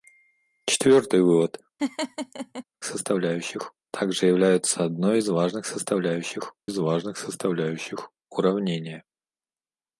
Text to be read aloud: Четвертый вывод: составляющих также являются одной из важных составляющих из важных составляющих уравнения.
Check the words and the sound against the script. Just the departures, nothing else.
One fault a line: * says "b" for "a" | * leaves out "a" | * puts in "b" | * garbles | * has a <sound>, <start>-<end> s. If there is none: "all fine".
* has a laugh, 1.8-2.6 s